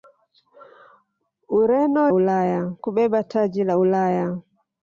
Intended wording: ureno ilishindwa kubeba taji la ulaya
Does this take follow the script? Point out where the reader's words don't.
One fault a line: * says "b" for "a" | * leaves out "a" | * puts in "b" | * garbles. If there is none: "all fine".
* says "ulaya" for "ilishindwa"